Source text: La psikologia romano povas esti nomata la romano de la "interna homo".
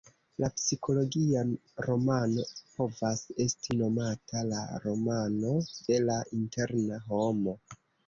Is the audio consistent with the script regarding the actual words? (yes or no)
yes